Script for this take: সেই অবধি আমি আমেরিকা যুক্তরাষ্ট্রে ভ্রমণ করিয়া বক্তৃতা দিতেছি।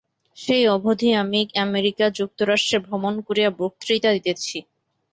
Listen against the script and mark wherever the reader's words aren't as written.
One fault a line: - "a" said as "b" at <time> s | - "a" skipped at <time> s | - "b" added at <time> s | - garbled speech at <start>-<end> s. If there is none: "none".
none